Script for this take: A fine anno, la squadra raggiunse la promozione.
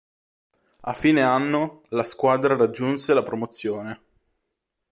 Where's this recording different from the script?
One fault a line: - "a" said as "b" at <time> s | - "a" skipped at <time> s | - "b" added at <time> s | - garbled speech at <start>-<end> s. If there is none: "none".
none